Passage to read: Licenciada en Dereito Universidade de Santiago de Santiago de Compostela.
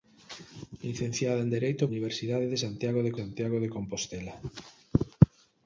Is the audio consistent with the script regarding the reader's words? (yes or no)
yes